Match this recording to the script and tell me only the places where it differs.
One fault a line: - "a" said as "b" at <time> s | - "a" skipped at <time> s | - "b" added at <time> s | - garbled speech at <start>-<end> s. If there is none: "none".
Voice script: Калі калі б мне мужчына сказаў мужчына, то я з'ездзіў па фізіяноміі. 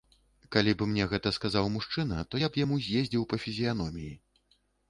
- "калі" skipped at 0.7 s
- "мужчына" said as "гэта" at 1.1 s
- "б яму" added at 2.5 s